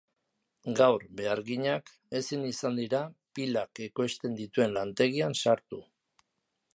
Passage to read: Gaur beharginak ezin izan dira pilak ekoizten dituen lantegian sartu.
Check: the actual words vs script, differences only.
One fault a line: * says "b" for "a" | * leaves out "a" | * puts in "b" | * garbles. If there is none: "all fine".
all fine